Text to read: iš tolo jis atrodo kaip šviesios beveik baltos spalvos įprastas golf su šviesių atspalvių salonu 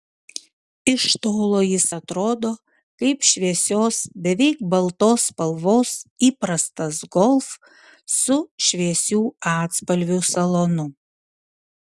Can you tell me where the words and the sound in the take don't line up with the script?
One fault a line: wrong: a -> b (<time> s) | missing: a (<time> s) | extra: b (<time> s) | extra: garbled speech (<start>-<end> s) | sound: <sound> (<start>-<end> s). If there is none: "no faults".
no faults